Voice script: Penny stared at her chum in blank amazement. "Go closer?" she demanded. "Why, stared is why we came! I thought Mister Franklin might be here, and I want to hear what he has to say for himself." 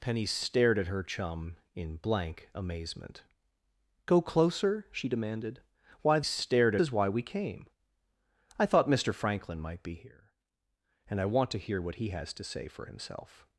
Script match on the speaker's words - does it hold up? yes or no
yes